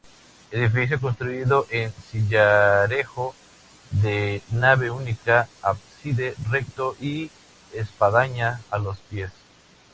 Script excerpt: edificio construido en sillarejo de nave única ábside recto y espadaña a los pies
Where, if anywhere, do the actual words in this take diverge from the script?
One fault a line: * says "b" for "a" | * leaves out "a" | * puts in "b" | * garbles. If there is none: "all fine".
all fine